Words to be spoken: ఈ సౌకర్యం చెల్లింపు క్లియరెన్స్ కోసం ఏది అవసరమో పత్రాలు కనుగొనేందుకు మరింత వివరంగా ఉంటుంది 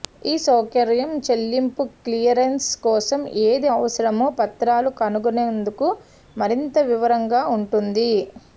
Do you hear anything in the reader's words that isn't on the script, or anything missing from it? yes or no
no